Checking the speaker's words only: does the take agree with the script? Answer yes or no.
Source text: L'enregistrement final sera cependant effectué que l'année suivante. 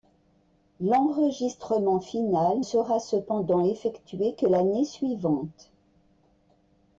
yes